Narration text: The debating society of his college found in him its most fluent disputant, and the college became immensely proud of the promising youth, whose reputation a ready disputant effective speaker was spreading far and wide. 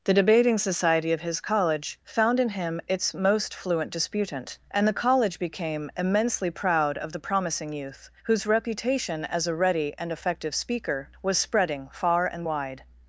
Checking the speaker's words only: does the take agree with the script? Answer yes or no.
no